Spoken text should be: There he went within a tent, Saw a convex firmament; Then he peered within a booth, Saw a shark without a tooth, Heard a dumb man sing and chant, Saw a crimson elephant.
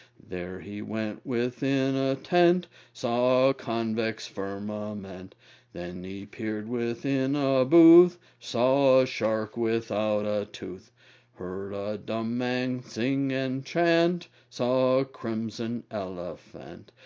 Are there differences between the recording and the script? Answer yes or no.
no